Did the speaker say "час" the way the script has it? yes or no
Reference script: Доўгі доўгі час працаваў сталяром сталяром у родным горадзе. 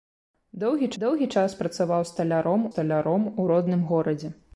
yes